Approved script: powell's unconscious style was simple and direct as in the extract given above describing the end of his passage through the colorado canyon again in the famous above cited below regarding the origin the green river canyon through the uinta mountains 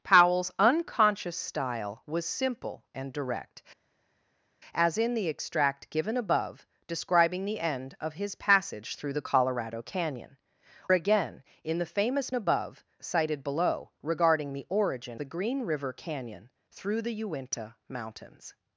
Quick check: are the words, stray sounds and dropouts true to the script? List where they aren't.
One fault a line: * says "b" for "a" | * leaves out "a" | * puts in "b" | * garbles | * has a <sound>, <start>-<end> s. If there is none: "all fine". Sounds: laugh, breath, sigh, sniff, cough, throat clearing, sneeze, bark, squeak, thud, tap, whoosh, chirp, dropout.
all fine